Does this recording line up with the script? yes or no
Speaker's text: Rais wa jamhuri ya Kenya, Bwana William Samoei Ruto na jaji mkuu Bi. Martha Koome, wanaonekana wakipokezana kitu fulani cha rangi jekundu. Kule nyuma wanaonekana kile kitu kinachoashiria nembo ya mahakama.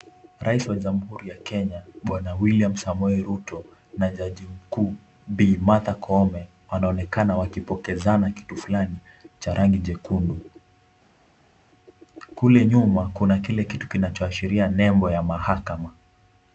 no